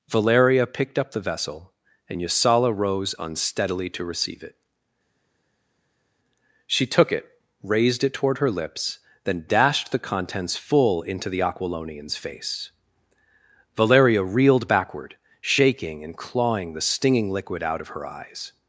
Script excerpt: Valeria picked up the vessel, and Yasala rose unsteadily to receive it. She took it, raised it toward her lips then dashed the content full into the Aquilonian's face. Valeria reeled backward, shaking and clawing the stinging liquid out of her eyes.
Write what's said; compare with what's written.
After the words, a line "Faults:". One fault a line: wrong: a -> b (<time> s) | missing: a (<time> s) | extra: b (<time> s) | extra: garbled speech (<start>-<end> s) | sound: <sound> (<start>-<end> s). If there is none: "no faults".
Valeria picked up the vessel, and Yasala rose unsteadily to receive it. She took it, raised it toward her lips then dashed the contents full into the Aquilonian's face. Valeria reeled backward, shaking and clawing the stinging liquid out of her eyes.
Faults:
wrong: content -> contents (10.0 s)